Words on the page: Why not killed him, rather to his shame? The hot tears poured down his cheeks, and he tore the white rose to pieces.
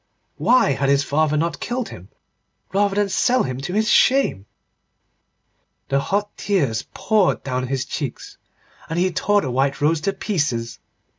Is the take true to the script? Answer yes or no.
no